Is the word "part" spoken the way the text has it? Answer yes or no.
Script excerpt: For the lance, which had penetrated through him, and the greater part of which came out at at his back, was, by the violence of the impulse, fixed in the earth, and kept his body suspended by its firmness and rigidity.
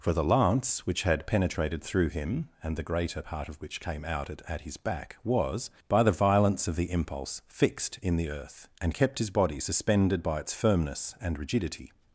yes